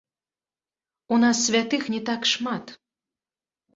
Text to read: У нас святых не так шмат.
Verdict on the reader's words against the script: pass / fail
pass